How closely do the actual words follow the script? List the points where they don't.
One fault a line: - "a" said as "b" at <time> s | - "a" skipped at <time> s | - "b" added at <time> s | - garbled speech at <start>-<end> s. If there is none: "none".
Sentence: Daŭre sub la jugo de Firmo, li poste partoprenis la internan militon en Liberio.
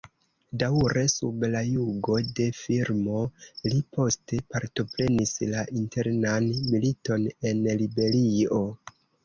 none